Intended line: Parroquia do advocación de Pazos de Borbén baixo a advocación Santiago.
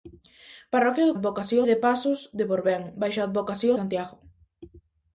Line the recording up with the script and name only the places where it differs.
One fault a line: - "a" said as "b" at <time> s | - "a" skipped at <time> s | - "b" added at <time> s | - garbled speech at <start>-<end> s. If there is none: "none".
none